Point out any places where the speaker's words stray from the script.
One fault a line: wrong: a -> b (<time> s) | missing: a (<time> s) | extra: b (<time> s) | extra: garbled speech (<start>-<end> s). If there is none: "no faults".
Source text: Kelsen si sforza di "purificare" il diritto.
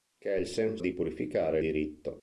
missing: si sforza (0.8 s)
missing: il (1.6 s)